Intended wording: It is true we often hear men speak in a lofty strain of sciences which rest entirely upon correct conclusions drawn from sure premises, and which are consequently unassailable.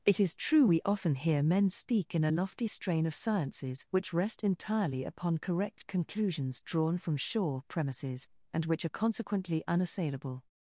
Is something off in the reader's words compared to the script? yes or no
no